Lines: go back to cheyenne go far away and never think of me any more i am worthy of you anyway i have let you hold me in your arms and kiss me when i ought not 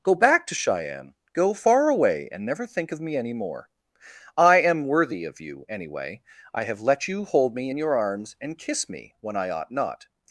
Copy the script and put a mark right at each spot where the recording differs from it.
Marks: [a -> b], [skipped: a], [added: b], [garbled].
go back to cheyenne go far away and never think of me any more i am worthy of you anyway i have let you hold me in your arms and kiss me when i ought not